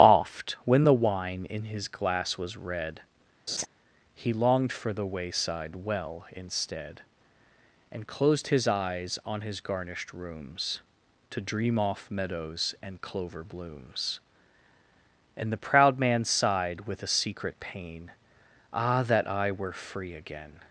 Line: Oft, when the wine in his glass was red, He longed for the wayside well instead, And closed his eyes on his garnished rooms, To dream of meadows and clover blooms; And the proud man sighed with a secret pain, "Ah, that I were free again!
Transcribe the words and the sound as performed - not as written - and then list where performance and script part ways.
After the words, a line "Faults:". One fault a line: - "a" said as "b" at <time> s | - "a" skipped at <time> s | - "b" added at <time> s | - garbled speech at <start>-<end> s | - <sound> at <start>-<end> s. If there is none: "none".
Oft, when the wine in his glass was red, He longed for the wayside well instead, And closed his eyes on his garnished rooms, To dream off meadows and clover blooms; And the proud man sighed with a secret pain, "Ah, that I were free again!
Faults:
- laugh at 3.5-3.7 s
- "of" said as "off" at 11.8 s